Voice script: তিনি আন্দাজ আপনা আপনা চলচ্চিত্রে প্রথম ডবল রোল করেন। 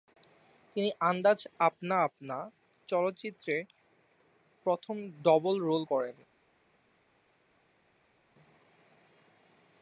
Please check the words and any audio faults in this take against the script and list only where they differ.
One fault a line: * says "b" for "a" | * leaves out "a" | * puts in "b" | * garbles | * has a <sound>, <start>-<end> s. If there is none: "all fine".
all fine